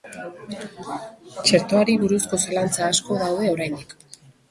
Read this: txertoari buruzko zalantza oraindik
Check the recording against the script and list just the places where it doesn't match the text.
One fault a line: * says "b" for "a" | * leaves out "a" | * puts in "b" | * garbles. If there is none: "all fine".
* puts in "asko daude"